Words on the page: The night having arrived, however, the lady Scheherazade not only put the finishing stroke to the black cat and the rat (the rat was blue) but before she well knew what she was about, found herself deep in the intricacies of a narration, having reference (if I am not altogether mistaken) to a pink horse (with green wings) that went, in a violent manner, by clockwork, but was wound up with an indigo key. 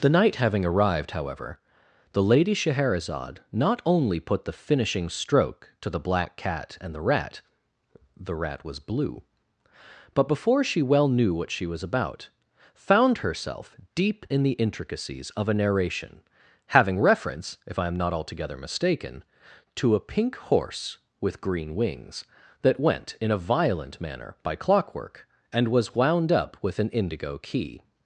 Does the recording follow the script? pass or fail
fail